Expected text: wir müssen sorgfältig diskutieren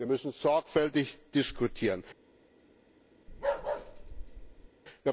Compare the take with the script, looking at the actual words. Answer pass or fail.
pass